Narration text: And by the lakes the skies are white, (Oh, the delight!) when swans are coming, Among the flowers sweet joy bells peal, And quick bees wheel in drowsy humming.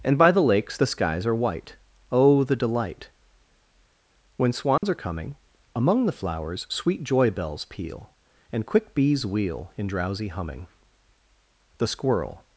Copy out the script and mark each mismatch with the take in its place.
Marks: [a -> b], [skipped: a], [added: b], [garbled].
And by the lakes the skies are white, (Oh, the delight!) when swans are coming, Among the flowers sweet joy bells peal, And quick bees wheel in drowsy humming. [added: The squirrel]